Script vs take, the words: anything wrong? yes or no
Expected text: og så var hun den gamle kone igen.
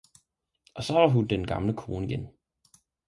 no